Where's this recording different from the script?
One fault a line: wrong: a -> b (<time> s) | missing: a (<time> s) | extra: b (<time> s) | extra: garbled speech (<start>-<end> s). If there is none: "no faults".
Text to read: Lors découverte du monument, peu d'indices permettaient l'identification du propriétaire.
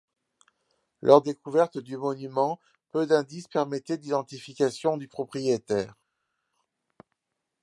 no faults